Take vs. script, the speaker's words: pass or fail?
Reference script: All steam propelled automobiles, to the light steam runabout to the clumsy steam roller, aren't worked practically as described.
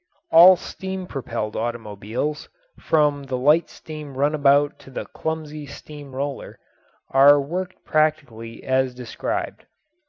fail